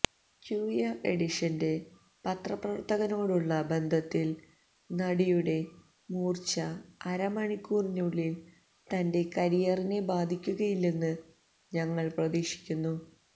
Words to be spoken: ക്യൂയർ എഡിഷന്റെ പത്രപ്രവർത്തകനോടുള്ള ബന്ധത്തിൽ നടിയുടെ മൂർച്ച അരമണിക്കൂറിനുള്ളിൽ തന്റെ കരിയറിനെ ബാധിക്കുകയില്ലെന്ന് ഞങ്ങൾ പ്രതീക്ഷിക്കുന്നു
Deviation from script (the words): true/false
false